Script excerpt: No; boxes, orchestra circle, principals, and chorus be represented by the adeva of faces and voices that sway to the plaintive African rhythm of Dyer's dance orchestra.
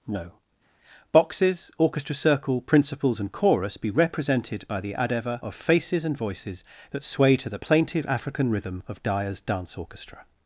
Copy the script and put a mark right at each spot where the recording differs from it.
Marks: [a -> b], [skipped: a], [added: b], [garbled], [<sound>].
No; boxes, orchestra circle, principals, and chorus be represented by the adeva of faces and voices that sway to the plaintive African rhythm of Dyer's dance orchestra.